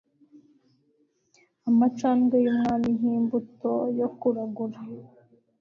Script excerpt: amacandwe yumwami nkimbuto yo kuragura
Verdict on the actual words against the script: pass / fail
pass